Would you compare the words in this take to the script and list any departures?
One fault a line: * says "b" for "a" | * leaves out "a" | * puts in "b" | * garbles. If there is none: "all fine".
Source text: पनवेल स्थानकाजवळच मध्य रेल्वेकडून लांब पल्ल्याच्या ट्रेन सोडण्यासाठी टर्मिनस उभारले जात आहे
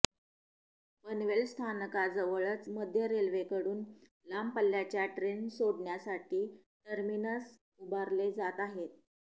all fine